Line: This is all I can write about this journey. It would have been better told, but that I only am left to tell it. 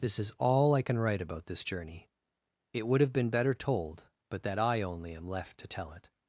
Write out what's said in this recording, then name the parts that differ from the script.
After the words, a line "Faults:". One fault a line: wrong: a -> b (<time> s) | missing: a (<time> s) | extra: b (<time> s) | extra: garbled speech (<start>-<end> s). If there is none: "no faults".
This is all I can write about this journey. It would have been better told, but that I only am left to tell it.
Faults:
no faults